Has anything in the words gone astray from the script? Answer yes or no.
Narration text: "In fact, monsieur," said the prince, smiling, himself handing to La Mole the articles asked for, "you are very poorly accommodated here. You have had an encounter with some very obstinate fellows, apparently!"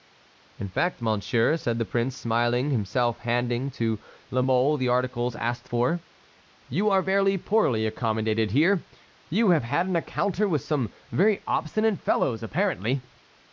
no